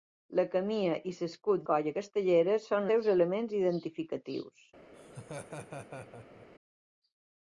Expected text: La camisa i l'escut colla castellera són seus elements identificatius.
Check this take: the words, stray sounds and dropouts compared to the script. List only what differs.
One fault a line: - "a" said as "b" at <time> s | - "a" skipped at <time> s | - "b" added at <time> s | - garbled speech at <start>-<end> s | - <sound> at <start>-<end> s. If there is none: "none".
- laugh at 4.9-6.5 s